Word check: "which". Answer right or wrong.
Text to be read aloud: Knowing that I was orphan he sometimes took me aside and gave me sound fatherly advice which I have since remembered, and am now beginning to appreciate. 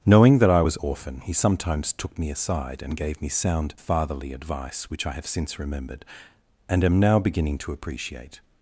right